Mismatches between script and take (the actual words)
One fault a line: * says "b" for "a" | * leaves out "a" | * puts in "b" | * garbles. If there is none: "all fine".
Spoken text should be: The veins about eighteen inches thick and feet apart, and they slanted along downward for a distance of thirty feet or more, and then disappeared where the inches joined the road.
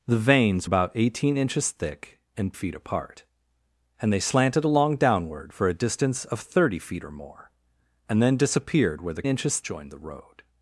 all fine